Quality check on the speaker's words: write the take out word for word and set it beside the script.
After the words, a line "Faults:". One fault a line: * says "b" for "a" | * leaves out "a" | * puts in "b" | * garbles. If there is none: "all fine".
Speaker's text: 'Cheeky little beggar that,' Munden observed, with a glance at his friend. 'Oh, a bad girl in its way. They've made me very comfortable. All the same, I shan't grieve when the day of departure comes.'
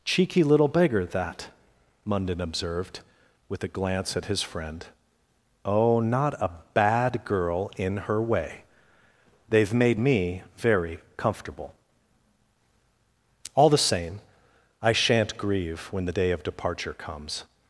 'Cheeky little beggar that,' Munden observed, with a glance at his friend. 'Oh, not a bad girl in her way. They've made me very comfortable. All the same, I shan't grieve when the day of departure comes.'
Faults:
* puts in "not"
* says "her" for "its"